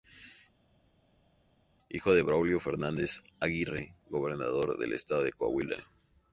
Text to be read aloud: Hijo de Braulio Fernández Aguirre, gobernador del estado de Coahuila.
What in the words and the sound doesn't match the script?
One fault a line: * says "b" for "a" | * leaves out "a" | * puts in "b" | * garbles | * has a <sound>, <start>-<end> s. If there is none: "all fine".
all fine